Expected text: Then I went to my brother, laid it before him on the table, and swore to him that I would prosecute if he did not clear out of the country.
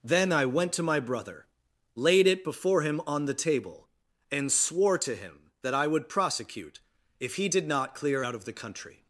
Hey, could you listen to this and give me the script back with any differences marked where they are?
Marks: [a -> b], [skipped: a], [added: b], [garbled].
Then I went to my brother, laid it before him on the table, and swore to him that I would prosecute if he did not clear out of the country.